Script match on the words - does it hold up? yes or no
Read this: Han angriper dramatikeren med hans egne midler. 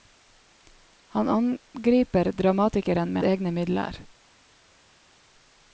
no